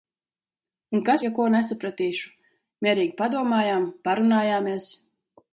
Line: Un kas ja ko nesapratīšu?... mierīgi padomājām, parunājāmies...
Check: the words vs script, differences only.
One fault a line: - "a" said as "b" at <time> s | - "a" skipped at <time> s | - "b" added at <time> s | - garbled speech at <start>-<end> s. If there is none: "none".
none